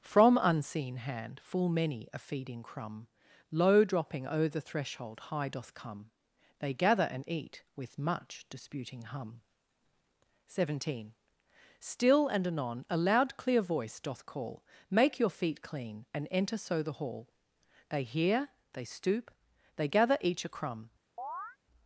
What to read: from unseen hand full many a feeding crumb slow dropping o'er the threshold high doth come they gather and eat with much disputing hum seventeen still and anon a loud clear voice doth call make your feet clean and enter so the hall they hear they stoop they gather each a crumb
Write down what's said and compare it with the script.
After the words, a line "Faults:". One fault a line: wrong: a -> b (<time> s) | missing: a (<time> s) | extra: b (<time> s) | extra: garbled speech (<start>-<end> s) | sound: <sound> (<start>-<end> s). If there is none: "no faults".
from unseen hand full many a feeding crumb low dropping o'er the threshold high doth come they gather and eat with much disputing hum seventeen still and anon a loud clear voice doth call make your feet clean and enter so the hall they hear they stoop they gather each a crumb
Faults:
wrong: slow -> low (3.5 s)
sound: chirp (21.2-21.6 s)